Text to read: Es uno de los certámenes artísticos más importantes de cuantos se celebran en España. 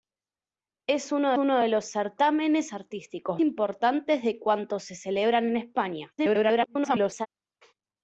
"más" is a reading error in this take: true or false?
true